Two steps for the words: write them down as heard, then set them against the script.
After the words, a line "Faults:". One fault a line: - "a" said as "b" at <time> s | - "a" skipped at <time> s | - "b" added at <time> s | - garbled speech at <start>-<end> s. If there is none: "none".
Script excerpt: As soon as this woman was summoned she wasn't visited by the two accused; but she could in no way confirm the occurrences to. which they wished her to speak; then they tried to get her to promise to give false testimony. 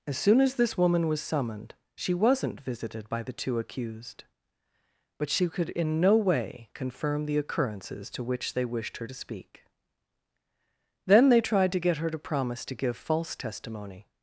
As soon as this woman was summoned she wasn't visited by the two accused; but she could in no way confirm the occurrences to. which they wished her to speak; then they tried to get her to promise to give false testimony.
Faults:
none